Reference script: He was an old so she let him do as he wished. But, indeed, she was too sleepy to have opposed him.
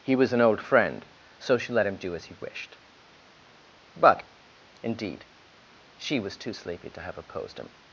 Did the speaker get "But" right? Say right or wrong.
right